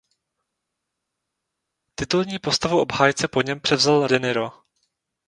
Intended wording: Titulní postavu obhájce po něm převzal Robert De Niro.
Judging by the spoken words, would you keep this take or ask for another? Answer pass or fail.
fail